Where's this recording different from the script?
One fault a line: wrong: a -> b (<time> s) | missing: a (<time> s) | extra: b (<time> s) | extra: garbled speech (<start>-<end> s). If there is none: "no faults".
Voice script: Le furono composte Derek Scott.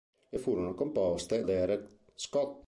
no faults